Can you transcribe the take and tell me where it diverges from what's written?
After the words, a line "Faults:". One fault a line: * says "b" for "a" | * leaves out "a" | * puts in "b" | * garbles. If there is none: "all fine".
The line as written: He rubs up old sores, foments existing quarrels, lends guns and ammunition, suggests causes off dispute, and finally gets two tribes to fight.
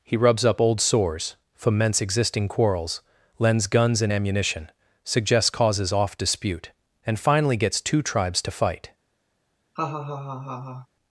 He rubs up old sores, foments existing quarrels, lends guns and ammunition, suggests causes off dispute, and finally gets two tribes to fight.
Faults:
all fine